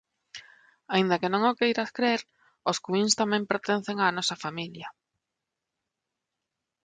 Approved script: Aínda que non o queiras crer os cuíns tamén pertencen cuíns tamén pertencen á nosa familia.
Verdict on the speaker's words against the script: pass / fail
fail